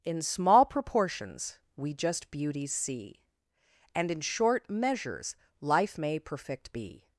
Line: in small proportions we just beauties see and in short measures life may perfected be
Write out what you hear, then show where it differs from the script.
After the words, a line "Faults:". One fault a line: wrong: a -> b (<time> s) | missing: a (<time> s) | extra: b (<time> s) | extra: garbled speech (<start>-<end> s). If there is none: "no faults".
in small proportions we just beauties see and in short measures life may perfect be
Faults:
wrong: perfected -> perfect (6.2 s)